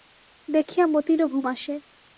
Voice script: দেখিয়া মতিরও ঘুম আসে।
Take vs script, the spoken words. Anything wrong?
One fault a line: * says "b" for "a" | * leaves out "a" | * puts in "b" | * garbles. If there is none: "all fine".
all fine